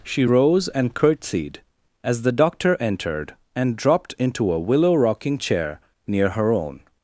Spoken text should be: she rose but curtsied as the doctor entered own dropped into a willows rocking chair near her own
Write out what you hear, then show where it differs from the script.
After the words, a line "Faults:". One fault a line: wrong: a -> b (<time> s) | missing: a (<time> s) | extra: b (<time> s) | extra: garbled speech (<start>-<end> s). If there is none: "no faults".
she rose and curtsied as the doctor entered and dropped into a willow rocking chair near her own
Faults:
wrong: but -> and (0.7 s)
wrong: own -> and (3.6 s)
wrong: willows -> willow (4.6 s)